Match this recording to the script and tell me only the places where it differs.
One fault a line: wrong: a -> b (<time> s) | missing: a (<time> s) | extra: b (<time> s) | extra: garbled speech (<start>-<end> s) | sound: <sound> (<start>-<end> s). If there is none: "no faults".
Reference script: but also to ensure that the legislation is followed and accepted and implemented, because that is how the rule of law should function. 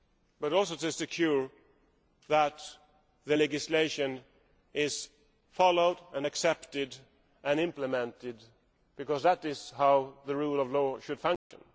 sound: dropout (11.4-11.5 s)